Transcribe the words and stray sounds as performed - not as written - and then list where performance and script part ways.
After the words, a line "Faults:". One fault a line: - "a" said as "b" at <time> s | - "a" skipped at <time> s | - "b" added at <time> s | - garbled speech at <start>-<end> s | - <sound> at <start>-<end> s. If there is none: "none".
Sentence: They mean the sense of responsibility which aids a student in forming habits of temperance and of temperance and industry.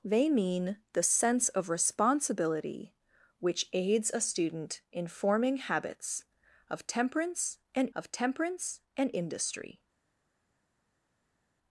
They mean the sense of responsibility which aids a student in forming habits of temperance and of temperance and industry.
Faults:
none